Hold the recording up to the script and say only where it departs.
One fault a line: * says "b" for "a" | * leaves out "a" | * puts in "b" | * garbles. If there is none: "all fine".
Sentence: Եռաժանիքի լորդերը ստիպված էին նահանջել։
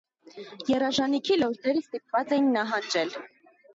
all fine